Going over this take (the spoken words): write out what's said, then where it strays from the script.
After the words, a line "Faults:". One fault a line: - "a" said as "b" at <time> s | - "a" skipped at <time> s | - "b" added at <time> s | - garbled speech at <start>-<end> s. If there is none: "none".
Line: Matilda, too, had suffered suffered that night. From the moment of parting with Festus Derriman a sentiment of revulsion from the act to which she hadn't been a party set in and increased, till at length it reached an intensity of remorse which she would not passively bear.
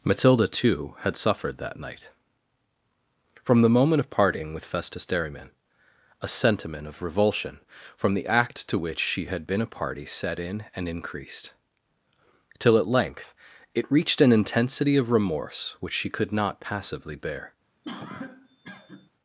Matilda, too, had suffered that night. From the moment of parting with Festus Derriman a sentiment of revulsion from the act to which she had been a party set in and increased, till at length it reached an intensity of remorse which she could not passively bear.
Faults:
- "suffered" skipped at 1.6 s
- "hadn't" said as "had" at 9.3 s
- "would" said as "could" at 16.1 s